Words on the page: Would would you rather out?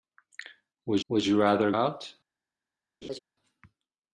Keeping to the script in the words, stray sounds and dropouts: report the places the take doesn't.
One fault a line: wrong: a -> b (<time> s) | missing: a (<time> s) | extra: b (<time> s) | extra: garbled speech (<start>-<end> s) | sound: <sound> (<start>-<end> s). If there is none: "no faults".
sound: laugh (3.0-3.2 s)